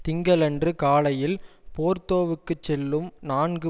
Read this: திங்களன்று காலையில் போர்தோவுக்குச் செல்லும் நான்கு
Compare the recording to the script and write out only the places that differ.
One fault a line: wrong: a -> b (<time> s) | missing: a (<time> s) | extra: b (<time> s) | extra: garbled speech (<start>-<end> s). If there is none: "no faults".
no faults